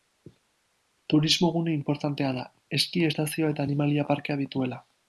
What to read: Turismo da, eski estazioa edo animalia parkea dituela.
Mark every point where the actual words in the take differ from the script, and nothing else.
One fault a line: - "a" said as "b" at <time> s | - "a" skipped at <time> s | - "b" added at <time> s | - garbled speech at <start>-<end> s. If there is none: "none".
- "gune inportantea" added at 1.6 s
- "edo" said as "eta" at 3.6 s